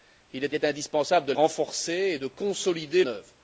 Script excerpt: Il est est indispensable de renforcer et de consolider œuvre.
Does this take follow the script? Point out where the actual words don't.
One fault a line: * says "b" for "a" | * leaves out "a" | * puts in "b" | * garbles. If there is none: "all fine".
all fine